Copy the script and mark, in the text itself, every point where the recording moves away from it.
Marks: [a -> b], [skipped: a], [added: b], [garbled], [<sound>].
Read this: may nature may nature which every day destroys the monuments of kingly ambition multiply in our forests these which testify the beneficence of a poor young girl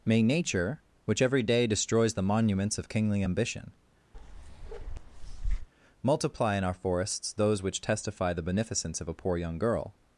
may nature [skipped: may nature] which every day destroys the monuments of kingly ambition [bark] multiply in our forests [these -> those] which testify the beneficence of a poor young girl